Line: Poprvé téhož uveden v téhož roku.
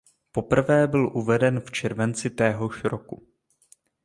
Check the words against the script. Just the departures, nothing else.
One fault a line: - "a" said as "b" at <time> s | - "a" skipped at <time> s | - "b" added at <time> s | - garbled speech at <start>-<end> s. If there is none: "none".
- "téhož" said as "byl" at 0.9 s
- "červenci" added at 1.7 s